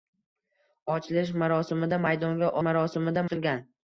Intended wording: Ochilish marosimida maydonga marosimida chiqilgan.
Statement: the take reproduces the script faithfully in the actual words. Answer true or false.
true